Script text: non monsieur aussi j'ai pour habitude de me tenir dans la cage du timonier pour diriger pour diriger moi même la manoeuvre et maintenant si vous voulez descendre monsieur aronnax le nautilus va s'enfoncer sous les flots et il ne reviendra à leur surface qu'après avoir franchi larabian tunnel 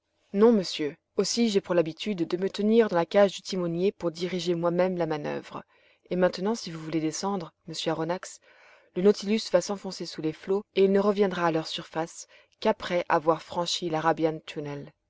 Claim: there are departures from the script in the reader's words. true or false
true